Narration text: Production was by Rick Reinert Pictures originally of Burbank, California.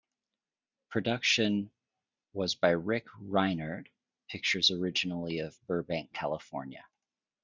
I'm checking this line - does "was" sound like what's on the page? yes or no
yes